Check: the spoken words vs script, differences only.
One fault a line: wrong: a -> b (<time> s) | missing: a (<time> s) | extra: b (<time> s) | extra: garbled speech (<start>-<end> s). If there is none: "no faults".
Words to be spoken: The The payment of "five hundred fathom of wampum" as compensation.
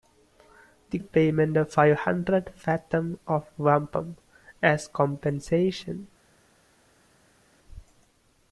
no faults